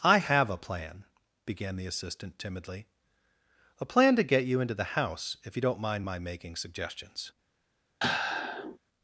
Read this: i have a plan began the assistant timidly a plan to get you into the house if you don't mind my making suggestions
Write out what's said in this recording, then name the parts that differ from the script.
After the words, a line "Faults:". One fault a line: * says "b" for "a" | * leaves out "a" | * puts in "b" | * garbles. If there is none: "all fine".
i have a plan began the assistant timidly a plan to get you into the house if you don't mind my making suggestions
Faults:
all fine